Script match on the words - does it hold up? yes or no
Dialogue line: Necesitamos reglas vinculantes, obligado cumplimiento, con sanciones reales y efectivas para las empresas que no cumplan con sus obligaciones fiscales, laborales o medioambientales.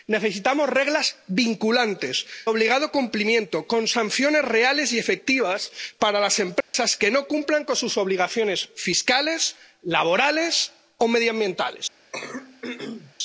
yes